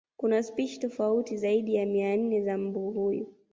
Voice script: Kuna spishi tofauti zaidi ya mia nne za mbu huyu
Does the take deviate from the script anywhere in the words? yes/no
no